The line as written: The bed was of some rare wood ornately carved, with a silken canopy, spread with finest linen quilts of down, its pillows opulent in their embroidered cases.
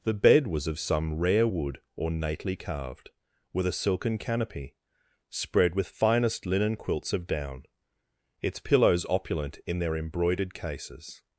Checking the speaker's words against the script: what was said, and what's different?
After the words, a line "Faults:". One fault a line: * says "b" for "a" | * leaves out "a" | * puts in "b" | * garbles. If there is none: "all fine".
The bed was of some rare wood ornately carved, with a silken canopy, spread with finest linen quilts of down, its pillows opulent in their embroidered cases.
Faults:
all fine